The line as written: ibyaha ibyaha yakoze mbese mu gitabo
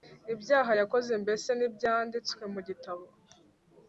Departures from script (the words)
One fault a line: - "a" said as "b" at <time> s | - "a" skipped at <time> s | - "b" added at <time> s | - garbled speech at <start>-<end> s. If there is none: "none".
- "ibyaha" skipped at 0.7 s
- "ntibyanditswe" added at 1.5 s